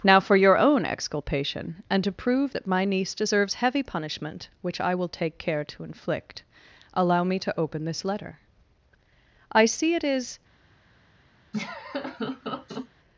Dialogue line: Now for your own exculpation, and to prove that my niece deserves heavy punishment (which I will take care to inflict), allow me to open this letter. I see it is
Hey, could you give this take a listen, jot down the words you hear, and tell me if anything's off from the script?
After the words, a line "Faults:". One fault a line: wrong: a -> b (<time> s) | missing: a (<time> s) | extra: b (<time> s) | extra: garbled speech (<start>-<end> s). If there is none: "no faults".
Now for your own exculpation, and to prove that my niece deserves heavy punishment (which I will take care to inflict), allow me to open this letter. I see it is
Faults:
no faults